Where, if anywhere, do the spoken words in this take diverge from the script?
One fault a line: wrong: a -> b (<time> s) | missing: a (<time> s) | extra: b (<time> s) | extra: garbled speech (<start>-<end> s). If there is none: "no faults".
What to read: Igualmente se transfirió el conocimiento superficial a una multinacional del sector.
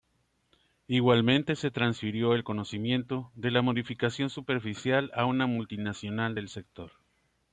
extra: de la modificación (3.3 s)